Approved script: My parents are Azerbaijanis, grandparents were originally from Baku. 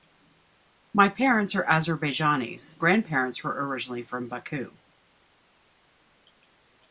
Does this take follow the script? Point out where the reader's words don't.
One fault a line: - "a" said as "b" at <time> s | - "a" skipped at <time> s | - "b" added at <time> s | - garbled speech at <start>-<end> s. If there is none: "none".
none